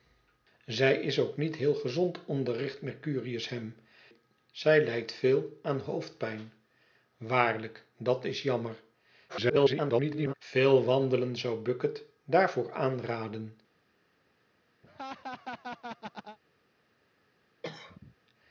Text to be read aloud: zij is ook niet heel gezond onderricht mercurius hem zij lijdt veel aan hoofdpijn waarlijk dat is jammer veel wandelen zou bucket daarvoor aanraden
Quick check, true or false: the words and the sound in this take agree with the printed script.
false